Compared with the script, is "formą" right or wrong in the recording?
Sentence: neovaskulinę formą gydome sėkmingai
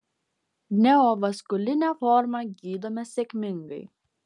right